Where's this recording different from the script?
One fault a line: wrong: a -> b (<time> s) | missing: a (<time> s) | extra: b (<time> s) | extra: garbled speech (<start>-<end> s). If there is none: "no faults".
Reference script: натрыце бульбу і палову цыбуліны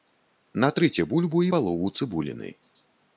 no faults